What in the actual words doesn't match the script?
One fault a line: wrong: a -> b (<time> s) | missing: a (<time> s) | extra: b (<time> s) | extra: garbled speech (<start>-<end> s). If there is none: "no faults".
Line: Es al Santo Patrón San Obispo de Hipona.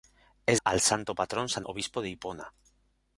no faults